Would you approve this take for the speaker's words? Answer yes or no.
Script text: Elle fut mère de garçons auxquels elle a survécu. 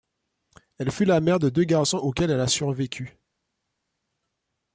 no